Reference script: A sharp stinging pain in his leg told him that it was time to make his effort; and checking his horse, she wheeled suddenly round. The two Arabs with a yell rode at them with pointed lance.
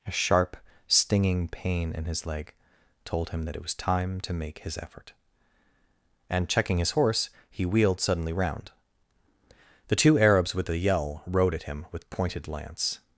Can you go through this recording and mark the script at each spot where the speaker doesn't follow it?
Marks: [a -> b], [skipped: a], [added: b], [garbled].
A sharp stinging pain in his leg told him that it was time to make his effort; and checking his horse, [she -> he] wheeled suddenly round. The two Arabs with a yell rode at [them -> him] with pointed lance.